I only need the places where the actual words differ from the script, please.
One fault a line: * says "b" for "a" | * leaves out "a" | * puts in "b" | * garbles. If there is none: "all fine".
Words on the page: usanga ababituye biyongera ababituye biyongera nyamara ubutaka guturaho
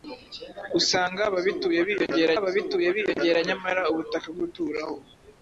all fine